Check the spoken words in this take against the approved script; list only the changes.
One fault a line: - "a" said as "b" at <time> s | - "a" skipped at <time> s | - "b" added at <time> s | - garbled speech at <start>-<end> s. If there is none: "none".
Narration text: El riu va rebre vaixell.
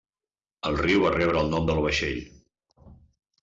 - "el nom del" added at 1.4 s